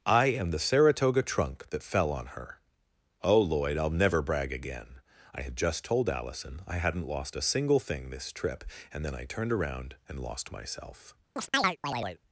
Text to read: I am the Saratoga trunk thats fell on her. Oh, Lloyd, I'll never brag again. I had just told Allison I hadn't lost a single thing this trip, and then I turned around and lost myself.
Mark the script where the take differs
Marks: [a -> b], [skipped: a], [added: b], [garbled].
I am the Saratoga trunk [thats -> that] fell on her. Oh, Lloyd, I'll never brag again. I had just told Allison I hadn't lost a single thing this trip, and then I turned around and lost myself.